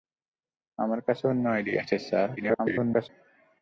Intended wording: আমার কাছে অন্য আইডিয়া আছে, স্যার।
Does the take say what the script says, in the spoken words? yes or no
no